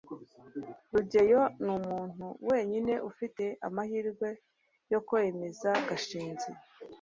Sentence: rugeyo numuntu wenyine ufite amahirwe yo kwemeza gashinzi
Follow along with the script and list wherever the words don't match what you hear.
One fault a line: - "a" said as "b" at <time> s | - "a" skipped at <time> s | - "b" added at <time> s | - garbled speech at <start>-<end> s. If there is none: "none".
none